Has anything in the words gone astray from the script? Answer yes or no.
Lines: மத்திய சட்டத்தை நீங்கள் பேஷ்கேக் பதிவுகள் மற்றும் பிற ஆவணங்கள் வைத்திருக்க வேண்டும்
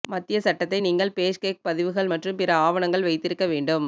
no